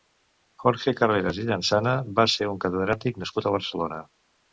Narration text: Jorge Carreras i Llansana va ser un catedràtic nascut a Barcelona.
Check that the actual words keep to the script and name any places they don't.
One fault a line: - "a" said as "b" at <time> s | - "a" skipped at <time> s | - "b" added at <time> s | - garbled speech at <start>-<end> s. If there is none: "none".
none